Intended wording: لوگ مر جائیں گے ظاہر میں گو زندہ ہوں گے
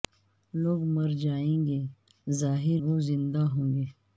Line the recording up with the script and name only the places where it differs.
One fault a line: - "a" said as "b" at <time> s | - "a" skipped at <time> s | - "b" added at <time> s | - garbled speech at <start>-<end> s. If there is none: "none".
- "میں" skipped at 2.8 s